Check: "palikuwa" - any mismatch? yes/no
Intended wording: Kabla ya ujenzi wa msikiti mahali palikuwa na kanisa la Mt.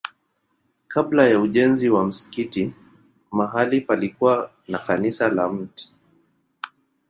no